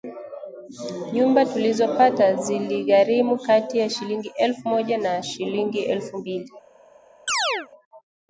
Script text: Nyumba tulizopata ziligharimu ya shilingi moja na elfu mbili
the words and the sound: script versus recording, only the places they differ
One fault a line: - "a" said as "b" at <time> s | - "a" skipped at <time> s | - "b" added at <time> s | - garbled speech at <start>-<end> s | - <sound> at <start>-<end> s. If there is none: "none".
- "kati" added at 3.4 s
- "elfu" added at 4.4 s
- "shilingi" added at 5.2 s
- chirp at 7.3-7.7 s